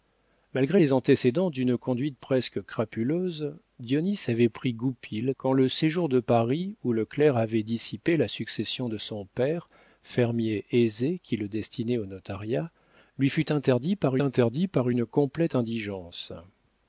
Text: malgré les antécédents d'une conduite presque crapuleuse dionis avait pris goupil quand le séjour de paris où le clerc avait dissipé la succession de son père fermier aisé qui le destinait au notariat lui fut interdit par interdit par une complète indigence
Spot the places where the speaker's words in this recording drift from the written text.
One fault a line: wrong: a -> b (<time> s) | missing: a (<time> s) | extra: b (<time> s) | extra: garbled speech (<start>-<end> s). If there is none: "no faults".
no faults